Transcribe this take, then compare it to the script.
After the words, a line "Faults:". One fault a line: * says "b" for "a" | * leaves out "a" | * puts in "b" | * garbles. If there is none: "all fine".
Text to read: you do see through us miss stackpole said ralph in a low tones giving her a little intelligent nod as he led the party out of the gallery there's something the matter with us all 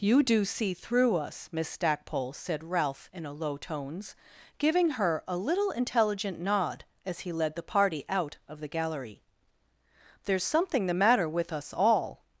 you do see through us miss stackpole said ralph in a low tones giving her a little intelligent nod as he led the party out of the gallery there's something the matter with us all
Faults:
all fine